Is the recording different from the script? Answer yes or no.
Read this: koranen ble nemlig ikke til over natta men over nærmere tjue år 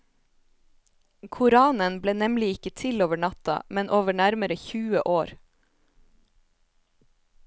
no